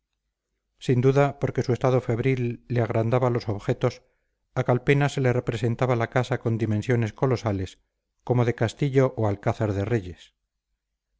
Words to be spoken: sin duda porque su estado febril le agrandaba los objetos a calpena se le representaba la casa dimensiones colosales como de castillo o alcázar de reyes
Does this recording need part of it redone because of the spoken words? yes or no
yes